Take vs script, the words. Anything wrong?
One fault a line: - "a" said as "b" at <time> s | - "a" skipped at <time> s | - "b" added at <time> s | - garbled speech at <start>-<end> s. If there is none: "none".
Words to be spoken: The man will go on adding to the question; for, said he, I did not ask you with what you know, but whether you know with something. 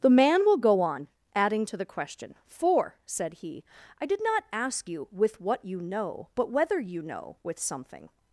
none